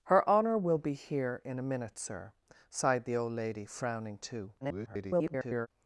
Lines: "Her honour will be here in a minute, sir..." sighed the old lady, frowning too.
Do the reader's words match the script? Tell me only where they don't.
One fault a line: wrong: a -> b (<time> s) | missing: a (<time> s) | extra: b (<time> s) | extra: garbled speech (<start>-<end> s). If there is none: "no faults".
extra: garbled speech (4.6-5.7 s)